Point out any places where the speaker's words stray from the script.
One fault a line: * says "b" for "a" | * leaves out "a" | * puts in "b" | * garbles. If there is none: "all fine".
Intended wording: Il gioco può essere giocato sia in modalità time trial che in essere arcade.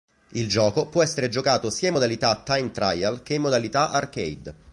* says "modalità" for "essere"